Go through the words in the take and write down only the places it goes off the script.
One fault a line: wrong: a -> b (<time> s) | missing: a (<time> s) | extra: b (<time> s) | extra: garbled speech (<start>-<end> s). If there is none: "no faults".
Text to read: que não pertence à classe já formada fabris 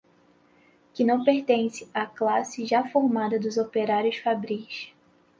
extra: dos operários (3.4 s)